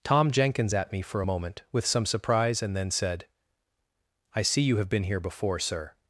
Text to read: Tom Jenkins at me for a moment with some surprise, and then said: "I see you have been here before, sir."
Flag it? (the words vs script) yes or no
no